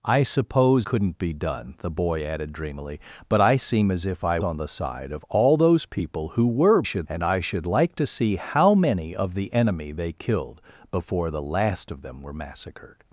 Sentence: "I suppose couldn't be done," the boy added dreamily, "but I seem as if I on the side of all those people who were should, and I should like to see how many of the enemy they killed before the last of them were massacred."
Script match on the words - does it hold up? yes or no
yes